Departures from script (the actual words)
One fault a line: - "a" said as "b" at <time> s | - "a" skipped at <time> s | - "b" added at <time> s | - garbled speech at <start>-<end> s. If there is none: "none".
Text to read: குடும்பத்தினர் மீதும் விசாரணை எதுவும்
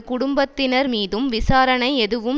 none